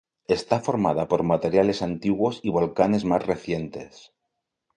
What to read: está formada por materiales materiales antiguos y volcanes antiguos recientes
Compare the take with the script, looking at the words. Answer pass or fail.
fail